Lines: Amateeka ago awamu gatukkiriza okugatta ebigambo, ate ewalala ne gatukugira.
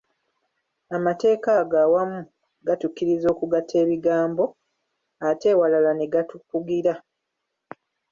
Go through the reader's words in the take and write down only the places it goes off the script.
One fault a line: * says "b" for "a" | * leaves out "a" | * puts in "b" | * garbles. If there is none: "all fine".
all fine